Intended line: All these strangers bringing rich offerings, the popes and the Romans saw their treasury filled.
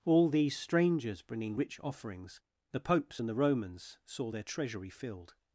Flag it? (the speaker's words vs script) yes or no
no